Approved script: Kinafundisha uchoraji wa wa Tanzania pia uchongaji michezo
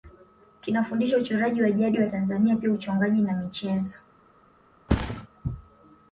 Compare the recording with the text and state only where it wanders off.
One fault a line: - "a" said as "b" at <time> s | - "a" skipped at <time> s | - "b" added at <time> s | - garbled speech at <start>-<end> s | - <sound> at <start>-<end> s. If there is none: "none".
- "jadi" added at 1.7 s
- "na" added at 3.2 s
- thud at 4.9-5.3 s